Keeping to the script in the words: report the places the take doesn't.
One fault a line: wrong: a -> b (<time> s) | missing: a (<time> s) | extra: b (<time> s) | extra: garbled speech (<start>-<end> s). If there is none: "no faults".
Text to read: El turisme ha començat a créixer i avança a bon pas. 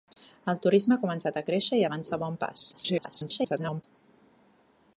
extra: garbled speech (2.7-3.8 s)